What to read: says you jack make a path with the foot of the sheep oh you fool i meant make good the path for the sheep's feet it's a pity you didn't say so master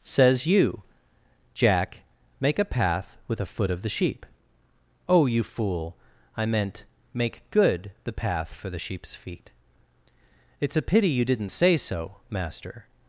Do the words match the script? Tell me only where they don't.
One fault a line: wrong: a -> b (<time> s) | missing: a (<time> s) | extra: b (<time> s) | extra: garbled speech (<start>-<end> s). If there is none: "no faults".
wrong: the -> a (3.4 s)